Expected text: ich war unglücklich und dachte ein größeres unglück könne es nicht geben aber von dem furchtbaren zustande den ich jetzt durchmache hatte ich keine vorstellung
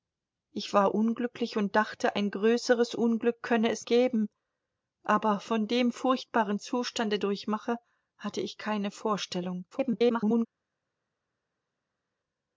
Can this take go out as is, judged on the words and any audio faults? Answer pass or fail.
fail